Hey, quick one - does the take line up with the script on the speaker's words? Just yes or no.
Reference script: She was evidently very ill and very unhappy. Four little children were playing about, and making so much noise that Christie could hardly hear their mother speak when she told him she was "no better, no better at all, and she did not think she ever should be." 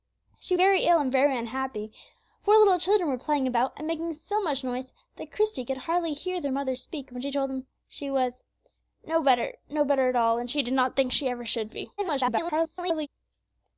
no